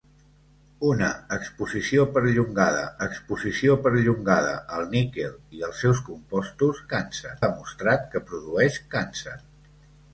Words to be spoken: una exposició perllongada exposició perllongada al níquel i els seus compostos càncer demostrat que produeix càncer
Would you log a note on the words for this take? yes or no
no